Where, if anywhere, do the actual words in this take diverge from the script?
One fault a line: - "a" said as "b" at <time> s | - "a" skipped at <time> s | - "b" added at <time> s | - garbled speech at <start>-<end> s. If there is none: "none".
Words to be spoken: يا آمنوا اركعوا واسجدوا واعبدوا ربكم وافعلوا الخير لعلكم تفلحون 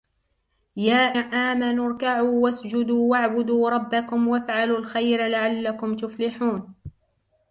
none